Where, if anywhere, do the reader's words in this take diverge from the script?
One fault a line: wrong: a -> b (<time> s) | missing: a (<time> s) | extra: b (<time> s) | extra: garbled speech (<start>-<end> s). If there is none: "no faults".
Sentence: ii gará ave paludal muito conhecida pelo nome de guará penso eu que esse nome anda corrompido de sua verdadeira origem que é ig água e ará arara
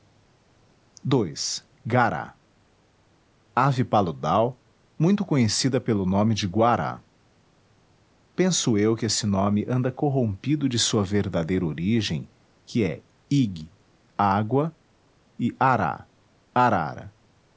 no faults